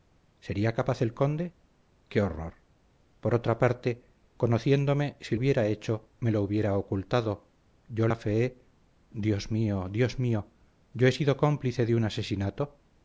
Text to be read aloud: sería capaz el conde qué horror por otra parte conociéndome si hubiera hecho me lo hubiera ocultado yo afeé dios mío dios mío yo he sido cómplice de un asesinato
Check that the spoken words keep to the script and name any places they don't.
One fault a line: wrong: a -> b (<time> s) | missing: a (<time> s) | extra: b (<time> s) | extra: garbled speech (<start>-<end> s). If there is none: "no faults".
no faults